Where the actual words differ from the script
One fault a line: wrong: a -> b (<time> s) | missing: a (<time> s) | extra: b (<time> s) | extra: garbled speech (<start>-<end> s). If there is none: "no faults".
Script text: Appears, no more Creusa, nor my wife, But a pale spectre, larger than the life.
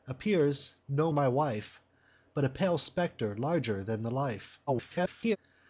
missing: more Creusa nor (1.1 s)
extra: garbled speech (4.7-5.4 s)